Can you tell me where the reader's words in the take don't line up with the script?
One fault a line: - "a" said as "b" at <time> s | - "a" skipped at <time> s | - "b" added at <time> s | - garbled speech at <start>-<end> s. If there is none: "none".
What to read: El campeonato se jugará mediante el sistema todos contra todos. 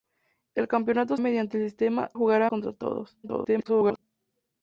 - "se jugará" skipped at 1.1 s
- "todos" said as "jugará" at 2.1 s
- garbled speech at 3.2-4.0 s